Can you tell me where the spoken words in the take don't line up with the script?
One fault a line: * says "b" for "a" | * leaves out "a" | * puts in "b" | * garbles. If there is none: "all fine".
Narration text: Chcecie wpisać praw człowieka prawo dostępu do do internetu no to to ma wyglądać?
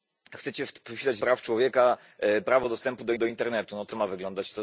all fine